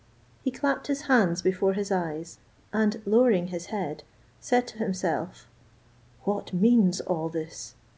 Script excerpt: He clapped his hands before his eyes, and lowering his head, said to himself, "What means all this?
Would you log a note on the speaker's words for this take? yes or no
no